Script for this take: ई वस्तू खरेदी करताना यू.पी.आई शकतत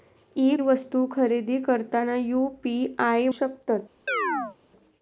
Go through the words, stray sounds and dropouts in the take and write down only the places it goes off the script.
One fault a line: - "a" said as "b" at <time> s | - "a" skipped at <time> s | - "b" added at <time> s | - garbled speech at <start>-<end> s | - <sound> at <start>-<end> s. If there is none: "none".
- chirp at 4.1-4.6 s